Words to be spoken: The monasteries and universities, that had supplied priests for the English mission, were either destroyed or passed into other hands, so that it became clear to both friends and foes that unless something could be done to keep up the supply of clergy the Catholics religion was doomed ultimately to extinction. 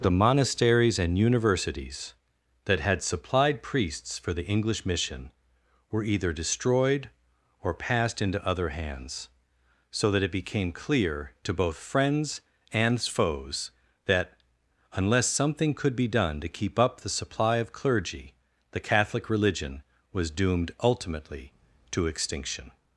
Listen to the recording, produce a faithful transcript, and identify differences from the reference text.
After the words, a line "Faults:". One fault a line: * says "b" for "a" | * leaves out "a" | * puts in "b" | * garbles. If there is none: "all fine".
The monasteries and universities, that had supplied priests for the English mission, were either destroyed or passed into other hands, so that it became clear to both friends and foes that unless something could be done to keep up the supply of clergy the Catholic religion was doomed ultimately to extinction.
Faults:
* says "Catholic" for "Catholics"